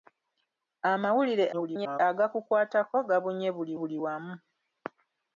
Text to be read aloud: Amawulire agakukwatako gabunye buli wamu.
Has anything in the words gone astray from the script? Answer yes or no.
yes